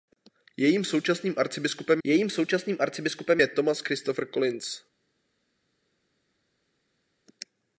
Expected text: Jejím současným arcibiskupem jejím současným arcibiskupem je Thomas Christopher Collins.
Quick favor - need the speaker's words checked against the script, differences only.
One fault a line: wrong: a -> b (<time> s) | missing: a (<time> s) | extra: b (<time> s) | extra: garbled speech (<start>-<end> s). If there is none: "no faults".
no faults